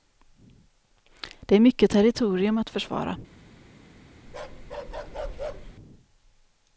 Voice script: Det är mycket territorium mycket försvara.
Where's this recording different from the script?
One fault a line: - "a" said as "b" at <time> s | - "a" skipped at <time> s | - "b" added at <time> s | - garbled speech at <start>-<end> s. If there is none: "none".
- "mycket" said as "att" at 2.6 s